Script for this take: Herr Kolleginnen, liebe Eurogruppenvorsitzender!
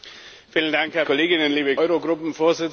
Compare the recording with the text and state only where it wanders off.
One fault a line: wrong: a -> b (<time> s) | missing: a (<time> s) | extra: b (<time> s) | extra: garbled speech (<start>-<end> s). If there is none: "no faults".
no faults